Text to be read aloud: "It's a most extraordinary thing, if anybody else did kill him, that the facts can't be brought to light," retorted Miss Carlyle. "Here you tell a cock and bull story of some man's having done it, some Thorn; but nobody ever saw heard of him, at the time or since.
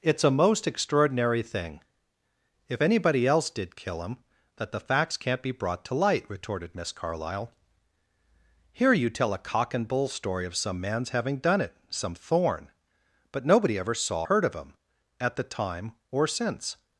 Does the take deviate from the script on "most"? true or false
false